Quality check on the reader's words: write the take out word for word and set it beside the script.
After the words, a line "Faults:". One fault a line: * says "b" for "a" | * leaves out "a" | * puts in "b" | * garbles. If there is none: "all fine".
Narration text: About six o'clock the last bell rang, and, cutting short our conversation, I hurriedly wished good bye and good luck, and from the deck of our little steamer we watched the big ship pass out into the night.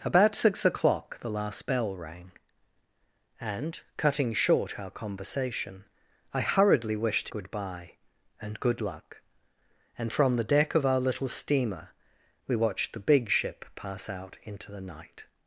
About six o'clock the last bell rang, and, cutting short our conversation, I hurriedly wished good bye and good luck, and from the deck of our little steamer we watched the big ship pass out into the night.
Faults:
all fine